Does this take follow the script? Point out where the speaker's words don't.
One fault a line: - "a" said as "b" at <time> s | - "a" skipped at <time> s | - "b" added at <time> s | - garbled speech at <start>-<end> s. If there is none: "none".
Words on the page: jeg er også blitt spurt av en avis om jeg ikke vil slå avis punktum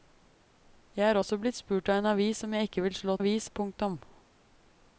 none